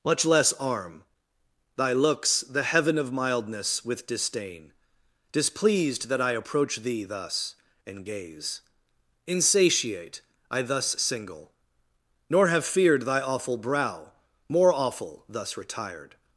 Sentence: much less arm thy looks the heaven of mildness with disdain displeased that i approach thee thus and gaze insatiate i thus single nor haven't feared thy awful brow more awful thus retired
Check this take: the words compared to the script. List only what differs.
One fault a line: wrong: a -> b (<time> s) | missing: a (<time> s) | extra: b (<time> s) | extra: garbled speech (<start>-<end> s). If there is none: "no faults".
wrong: haven't -> have (12.5 s)